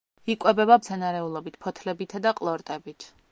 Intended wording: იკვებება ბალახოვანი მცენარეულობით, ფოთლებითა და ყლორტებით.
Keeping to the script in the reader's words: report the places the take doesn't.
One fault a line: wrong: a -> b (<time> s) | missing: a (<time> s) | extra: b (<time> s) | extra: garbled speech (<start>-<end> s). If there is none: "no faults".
missing: ბალახოვანი (0.8 s)